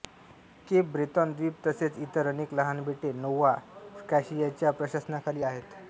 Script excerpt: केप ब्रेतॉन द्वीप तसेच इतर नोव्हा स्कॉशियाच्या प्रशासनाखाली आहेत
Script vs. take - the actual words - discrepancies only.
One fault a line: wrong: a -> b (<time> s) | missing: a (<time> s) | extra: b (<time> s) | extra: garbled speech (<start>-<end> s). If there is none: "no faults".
extra: अनेक लहान बेटे (2.3 s)